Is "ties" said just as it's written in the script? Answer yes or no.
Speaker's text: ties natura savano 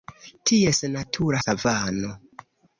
yes